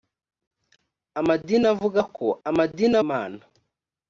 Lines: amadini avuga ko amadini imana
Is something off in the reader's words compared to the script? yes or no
no